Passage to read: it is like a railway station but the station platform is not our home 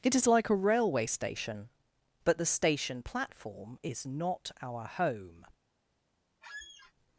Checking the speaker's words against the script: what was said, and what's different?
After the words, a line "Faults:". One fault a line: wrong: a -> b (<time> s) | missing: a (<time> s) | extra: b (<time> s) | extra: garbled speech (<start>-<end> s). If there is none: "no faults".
it is like a railway station but the station platform is not our home
Faults:
no faults